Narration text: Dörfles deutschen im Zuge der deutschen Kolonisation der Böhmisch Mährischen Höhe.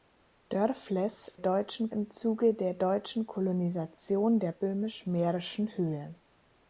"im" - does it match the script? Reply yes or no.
yes